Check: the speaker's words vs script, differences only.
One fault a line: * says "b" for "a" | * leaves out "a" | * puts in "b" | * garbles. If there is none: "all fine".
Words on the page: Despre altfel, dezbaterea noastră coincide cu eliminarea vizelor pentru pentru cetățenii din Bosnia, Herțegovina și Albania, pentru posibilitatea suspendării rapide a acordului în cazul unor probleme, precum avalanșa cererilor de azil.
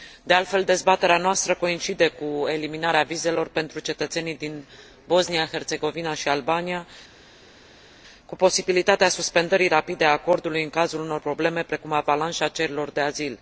* says "De" for "Despre"
* leaves out "pentru"
* says "cu" for "pentru"